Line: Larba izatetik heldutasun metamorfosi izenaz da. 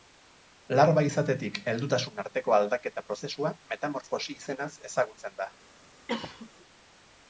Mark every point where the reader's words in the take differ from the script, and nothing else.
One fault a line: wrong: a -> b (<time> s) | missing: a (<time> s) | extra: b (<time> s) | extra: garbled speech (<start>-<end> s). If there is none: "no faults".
extra: arteko aldaketa prozesua (2.2 s)
extra: ezagutzen (4.9 s)